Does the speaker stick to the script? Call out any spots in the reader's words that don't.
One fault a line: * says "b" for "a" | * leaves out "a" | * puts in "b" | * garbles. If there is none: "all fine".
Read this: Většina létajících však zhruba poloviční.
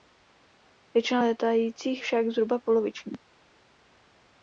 all fine